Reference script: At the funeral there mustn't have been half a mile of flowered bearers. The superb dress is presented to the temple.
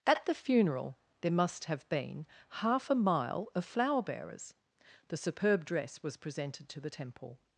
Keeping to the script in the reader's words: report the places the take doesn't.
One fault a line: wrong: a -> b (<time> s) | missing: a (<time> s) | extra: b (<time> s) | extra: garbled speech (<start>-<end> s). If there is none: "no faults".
wrong: mustn't -> must (1.3 s)
wrong: flowered -> flower (3.6 s)
wrong: is -> was (6.0 s)